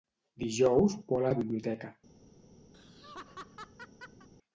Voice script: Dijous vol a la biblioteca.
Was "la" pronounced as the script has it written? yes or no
yes